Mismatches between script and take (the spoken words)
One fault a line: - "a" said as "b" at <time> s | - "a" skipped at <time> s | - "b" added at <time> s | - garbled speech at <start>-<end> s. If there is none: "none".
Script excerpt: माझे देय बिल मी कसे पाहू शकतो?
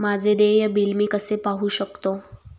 none